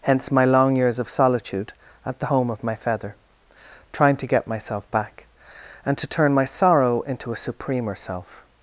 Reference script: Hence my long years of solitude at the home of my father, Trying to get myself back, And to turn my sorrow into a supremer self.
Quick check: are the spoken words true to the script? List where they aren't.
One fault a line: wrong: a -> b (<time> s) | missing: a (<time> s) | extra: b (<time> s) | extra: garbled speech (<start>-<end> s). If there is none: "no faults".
wrong: father -> feather (2.7 s)